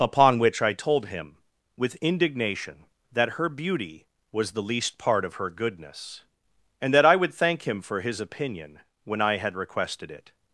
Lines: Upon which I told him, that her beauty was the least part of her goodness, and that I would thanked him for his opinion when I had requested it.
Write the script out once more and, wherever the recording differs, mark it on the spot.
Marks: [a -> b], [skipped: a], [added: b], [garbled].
Upon which I told him, [added: with indignation] that her beauty was the least part of her goodness, and that I would [thanked -> thank] him for his opinion when I had requested it.